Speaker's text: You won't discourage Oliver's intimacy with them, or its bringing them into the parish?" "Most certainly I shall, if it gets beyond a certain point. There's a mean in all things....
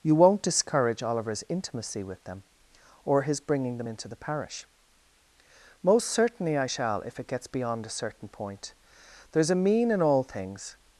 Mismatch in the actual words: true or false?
true